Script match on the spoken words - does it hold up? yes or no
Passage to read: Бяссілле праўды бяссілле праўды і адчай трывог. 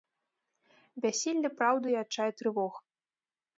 no